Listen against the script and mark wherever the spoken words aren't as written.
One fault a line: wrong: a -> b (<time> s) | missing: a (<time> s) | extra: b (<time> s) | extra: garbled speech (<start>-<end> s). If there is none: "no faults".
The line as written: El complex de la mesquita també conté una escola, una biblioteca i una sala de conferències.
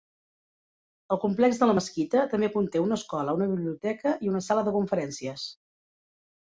no faults